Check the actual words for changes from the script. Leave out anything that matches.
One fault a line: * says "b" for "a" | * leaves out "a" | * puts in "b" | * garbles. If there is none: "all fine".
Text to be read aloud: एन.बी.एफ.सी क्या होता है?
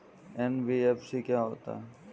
all fine